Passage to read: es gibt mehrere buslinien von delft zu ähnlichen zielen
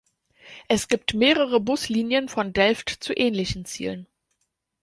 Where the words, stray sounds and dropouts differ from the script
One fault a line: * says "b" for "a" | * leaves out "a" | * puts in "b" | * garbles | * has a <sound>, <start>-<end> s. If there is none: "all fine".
all fine